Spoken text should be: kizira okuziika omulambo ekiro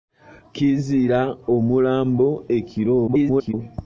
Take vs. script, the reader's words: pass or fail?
fail